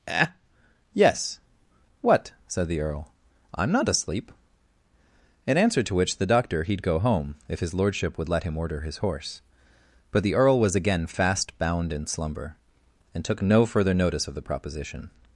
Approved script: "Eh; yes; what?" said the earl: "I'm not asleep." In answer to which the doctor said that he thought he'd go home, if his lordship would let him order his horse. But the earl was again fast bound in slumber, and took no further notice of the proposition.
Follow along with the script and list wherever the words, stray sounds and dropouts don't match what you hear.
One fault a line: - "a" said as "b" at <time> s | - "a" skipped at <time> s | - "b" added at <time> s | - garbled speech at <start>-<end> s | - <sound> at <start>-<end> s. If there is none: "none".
- "said that he thought" skipped at 6.6 s